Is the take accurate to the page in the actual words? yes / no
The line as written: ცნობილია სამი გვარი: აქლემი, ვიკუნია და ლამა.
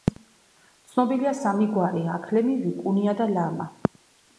yes